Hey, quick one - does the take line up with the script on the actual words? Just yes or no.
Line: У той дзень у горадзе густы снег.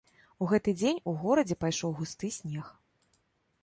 no